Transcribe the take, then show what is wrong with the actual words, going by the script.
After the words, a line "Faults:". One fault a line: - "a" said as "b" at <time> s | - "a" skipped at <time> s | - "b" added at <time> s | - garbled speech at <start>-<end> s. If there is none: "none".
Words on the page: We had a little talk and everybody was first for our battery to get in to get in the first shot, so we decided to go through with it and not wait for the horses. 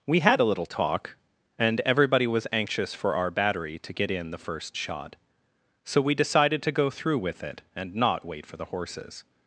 We had a little talk and everybody was anxious for our battery to get in the first shot, so we decided to go through with it and not wait for the horses.
Faults:
- "first" said as "anxious" at 2.5 s
- "to get in" skipped at 4.3 s